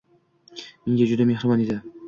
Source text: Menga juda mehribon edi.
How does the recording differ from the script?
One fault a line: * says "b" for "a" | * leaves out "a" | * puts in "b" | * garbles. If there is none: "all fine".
all fine